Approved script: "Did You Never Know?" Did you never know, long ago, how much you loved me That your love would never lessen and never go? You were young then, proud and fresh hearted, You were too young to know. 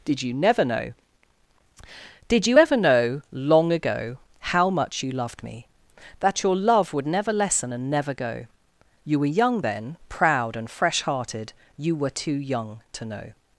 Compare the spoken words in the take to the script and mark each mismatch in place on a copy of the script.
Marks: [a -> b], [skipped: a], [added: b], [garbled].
"Did You Never Know?" Did you [never -> ever] know, long ago, how much you loved me That your love would never lessen and never go? You were young then, proud and fresh hearted, You were too young to know.